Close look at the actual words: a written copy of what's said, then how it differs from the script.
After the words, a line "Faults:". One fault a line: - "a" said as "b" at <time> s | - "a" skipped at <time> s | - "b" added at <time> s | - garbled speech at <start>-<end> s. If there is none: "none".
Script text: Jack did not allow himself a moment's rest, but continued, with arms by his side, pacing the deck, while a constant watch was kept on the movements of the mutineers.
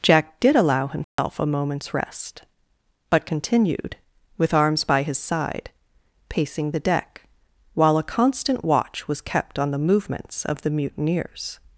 Jack did allow himself a moment's rest, but continued, with arms by his side, pacing the deck, while a constant watch was kept on the movements of the mutineers.
Faults:
- "not" skipped at 0.6 s